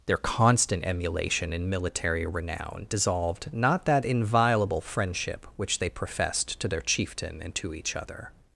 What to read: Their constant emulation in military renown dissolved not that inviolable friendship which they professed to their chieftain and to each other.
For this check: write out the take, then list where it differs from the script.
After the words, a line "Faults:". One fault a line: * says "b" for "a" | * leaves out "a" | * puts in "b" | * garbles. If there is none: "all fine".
Their constant emulation in military renown dissolved not that inviolable friendship which they professed to their chieftain and to each other.
Faults:
all fine